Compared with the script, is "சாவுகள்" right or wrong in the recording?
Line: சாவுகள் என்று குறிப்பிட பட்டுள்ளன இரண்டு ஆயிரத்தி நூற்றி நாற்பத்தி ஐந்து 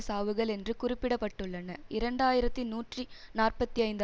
right